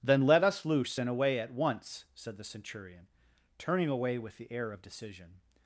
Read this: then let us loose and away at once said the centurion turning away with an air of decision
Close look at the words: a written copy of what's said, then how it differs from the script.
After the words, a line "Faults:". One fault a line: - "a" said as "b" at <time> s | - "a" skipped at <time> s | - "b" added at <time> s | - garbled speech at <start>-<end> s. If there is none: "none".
then let us loose and away at once said the centurion turning away with the air of decision
Faults:
- "an" said as "the" at 4.4 s